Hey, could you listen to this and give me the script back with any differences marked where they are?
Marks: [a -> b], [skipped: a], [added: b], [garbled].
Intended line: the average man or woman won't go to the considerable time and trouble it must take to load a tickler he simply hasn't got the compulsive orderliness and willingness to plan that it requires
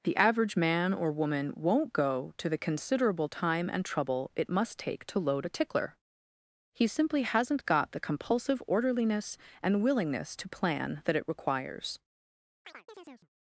the average man or woman won't go to the considerable time and trouble it must take to load a tickler he simply hasn't got the compulsive orderliness and willingness to plan that it requires